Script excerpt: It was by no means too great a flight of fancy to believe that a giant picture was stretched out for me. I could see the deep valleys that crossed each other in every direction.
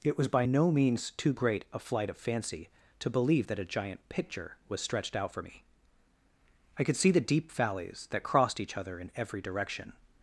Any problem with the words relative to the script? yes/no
no